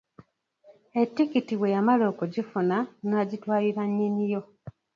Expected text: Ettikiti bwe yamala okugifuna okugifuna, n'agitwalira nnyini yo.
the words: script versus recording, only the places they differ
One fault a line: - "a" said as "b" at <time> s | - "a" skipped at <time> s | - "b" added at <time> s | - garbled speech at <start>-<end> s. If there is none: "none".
- "okugifuna" skipped at 2.8 s